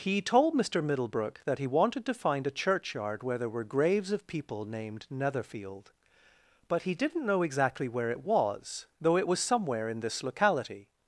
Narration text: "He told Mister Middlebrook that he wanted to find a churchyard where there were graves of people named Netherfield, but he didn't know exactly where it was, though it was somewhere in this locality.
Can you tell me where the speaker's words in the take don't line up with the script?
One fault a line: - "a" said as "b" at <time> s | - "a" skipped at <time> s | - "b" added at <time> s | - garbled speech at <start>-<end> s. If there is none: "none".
none